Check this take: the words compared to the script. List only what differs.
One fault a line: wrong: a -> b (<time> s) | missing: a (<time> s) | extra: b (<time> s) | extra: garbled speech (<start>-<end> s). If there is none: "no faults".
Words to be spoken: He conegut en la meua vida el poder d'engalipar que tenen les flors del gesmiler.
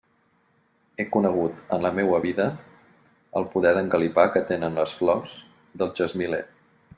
no faults